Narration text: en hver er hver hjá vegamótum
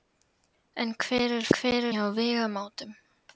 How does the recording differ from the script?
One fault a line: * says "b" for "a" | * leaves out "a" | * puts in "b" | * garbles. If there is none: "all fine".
all fine